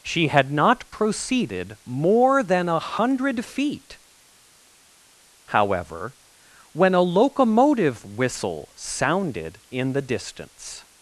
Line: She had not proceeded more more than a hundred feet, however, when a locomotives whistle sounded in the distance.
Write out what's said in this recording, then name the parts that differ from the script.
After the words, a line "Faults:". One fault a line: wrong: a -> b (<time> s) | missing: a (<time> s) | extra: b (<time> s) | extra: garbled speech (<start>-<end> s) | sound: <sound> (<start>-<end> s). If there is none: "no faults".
She had not proceeded more than a hundred feet, however, when a locomotive whistle sounded in the distance.
Faults:
missing: more (2.4 s)
wrong: locomotives -> locomotive (7.0 s)